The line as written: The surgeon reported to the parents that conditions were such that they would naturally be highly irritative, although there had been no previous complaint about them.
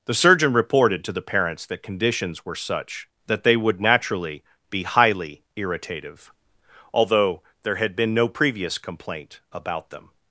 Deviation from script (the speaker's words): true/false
false